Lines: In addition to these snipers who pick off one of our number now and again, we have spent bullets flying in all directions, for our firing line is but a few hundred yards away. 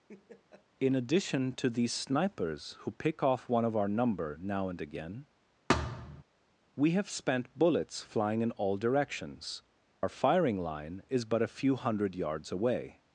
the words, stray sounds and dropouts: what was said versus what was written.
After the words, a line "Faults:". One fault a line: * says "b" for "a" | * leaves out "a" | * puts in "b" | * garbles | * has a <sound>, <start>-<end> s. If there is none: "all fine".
In addition to these snipers who pick off one of our number now and again, we have spent bullets flying in all directions, our firing line is but a few hundred yards away.
Faults:
* has a laugh, 0.1-0.7 s
* has a thud, 5.7-6.2 s
* leaves out "for"